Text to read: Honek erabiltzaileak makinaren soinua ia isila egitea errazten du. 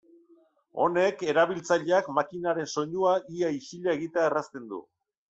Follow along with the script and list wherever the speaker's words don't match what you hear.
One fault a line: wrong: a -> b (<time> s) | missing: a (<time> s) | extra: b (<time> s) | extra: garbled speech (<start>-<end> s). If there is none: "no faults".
no faults